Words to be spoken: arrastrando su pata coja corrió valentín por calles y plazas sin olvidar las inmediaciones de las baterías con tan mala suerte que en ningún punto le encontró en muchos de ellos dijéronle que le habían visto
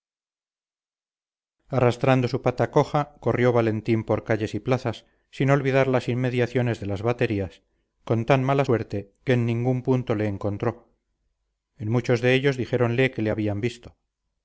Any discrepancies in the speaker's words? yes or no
no